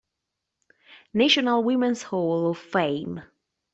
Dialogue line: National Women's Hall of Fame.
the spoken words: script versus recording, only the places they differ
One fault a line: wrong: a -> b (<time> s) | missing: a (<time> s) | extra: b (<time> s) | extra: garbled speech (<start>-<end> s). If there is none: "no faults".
no faults